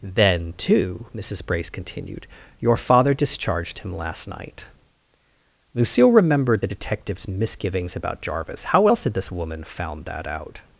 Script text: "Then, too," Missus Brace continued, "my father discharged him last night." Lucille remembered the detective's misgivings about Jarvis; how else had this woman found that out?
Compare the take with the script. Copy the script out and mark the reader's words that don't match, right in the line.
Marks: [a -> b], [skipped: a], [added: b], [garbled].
"Then, too," Missus Brace continued, ["my -> your] father discharged him last night." Lucille remembered the detective's misgivings about Jarvis; how else had this woman found that out?